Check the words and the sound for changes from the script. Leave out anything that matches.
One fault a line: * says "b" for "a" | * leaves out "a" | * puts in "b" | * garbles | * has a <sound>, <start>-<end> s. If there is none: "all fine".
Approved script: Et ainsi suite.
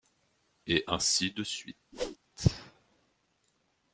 * puts in "de"
* has a whoosh, 1.9-2.2 s